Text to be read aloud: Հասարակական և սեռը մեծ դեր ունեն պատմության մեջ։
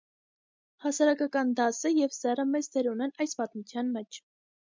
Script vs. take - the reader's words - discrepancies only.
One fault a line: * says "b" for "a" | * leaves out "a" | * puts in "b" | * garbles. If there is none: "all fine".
* puts in "դասը"
* puts in "այս"